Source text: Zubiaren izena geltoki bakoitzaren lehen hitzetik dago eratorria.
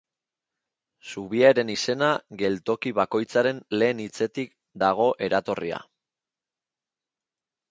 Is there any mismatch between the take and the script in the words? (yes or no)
no